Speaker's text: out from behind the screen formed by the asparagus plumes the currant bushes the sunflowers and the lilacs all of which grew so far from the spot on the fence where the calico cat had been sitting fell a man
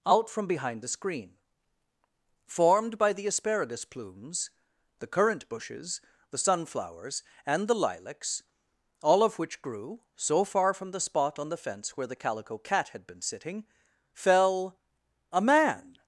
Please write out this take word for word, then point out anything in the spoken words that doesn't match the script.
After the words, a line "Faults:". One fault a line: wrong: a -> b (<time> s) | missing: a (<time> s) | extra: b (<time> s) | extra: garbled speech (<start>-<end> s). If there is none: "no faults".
out from behind the screen formed by the asparagus plumes the currant bushes the sunflowers and the lilacs all of which grew so far from the spot on the fence where the calico cat had been sitting fell a man
Faults:
no faults